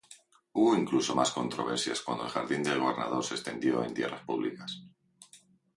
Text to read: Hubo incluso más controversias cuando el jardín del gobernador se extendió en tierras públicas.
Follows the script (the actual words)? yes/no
yes